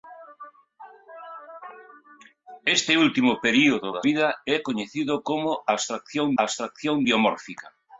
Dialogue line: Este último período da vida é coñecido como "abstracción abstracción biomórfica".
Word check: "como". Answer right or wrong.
right